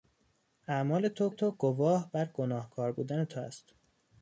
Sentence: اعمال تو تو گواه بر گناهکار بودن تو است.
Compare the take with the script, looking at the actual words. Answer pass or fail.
pass